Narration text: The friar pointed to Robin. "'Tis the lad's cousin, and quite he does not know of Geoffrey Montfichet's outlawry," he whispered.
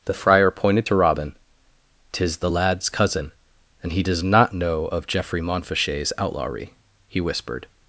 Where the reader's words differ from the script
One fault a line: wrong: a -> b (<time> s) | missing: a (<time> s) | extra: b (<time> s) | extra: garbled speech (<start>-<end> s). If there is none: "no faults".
missing: quite (3.9 s)